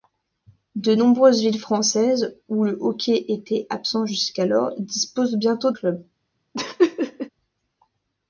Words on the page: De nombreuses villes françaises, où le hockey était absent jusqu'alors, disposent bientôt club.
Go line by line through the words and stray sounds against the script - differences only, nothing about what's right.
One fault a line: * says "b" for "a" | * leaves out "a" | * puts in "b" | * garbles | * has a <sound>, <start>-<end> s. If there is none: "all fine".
* has a laugh, 6.5-7.3 s